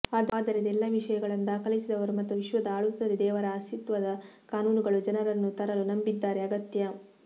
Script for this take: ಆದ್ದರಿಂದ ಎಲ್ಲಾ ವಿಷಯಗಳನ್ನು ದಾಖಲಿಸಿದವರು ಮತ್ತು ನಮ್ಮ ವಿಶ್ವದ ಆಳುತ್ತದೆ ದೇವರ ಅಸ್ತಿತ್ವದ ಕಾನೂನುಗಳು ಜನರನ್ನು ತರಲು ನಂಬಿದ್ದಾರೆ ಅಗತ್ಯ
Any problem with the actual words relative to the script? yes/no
yes